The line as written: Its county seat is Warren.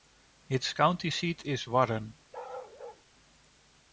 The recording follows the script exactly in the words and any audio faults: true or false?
false